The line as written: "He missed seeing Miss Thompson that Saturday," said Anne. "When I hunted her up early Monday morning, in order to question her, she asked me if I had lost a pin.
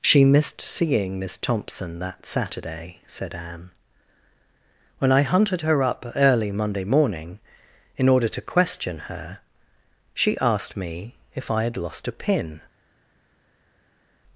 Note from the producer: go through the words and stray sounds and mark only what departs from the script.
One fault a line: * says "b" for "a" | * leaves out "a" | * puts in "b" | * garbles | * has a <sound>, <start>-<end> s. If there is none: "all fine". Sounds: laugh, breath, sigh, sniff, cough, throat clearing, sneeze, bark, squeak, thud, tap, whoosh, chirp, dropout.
* says "She" for "He"